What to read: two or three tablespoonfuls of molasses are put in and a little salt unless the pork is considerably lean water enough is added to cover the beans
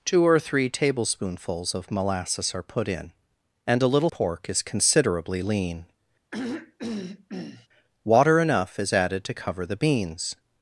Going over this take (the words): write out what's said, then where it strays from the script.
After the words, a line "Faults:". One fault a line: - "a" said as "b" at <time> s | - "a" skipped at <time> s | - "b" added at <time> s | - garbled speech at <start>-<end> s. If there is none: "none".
two or three tablespoonfuls of molasses are put in and a little pork is considerably lean water enough is added to cover the beans
Faults:
- "salt unless the" skipped at 4.1 s